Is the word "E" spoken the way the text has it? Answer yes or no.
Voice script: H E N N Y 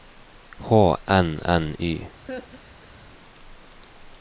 no